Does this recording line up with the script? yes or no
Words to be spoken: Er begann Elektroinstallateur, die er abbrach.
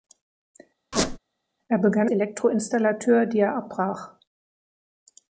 yes